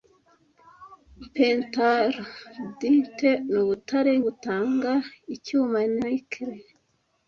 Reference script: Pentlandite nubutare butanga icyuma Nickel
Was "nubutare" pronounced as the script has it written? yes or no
yes